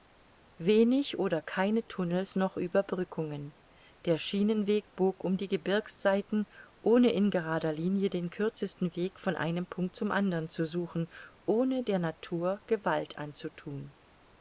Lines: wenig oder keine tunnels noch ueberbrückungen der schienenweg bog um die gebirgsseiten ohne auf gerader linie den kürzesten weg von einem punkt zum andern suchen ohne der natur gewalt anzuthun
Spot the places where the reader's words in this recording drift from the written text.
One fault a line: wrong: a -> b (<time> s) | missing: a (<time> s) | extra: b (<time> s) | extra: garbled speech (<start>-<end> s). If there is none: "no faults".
wrong: auf -> in (7.1 s)
extra: zu (10.5 s)